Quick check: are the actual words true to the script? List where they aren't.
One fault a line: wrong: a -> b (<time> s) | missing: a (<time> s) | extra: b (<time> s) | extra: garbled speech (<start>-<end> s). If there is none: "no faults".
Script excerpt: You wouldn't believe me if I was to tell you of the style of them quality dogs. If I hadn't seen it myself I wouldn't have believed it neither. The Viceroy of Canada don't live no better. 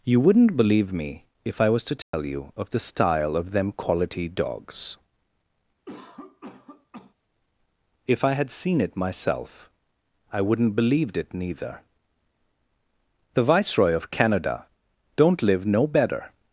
wrong: hadn't -> had (8.3 s)
missing: have (10.7 s)